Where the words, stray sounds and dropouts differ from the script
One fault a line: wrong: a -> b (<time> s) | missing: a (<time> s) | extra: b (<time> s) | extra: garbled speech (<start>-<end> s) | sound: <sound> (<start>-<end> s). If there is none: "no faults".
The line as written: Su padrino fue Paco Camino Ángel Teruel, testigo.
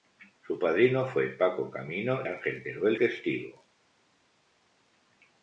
no faults